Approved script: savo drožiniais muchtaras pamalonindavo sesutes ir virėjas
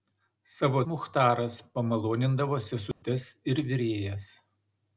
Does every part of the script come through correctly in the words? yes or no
no